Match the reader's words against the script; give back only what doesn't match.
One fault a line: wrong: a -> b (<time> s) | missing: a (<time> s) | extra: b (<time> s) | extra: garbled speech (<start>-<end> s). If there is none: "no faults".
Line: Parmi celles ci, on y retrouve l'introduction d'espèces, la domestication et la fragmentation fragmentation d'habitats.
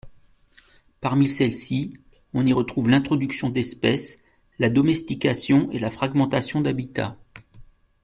missing: fragmentation (6.6 s)